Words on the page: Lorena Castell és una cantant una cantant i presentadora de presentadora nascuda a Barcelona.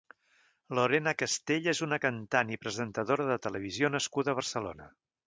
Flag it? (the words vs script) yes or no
yes